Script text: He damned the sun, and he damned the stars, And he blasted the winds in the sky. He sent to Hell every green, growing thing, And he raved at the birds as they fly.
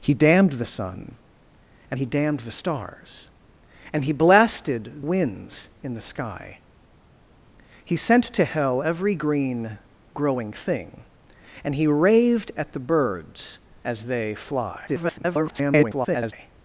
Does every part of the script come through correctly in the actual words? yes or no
no